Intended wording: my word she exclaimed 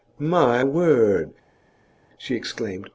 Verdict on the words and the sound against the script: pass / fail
pass